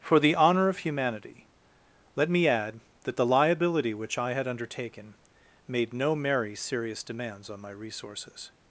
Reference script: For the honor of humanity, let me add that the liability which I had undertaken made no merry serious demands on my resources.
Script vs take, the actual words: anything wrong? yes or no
no